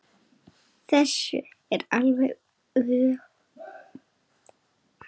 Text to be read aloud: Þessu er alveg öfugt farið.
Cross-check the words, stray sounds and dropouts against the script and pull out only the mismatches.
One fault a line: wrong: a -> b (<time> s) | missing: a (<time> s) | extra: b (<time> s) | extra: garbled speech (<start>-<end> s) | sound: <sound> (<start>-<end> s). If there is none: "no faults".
no faults